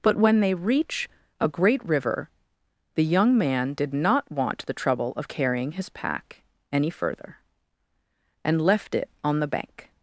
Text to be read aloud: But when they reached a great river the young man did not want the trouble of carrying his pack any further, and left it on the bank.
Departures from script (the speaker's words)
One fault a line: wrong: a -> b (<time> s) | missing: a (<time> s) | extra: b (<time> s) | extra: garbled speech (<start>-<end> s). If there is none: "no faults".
wrong: reached -> reach (0.5 s)